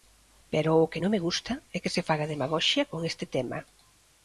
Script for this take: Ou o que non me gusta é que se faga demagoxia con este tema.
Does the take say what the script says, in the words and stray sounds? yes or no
no